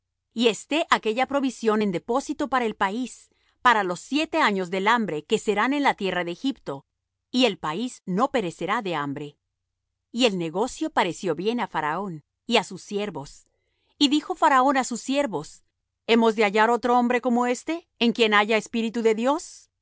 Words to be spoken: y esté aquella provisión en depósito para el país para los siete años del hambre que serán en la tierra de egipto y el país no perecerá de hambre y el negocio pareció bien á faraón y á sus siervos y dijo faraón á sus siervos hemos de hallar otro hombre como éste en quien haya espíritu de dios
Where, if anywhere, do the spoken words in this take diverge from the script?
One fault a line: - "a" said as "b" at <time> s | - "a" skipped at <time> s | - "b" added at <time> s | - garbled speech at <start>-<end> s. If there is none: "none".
none